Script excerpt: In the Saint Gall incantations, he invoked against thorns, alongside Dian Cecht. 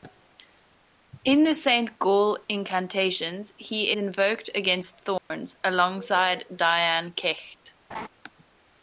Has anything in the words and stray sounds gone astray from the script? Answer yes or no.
yes